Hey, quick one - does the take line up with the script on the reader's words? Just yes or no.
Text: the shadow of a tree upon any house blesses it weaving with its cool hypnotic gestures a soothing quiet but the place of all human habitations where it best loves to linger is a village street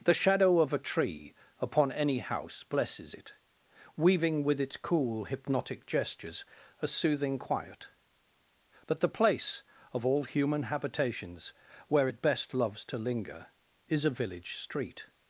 yes